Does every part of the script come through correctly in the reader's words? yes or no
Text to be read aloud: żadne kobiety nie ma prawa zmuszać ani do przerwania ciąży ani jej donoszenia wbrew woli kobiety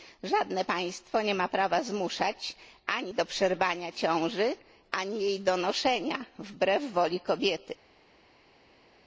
no